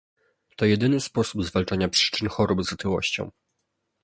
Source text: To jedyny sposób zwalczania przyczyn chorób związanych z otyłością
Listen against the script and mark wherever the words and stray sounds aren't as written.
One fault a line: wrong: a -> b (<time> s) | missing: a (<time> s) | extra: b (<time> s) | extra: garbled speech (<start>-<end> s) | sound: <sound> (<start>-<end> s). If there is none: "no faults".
missing: związanych (2.6 s)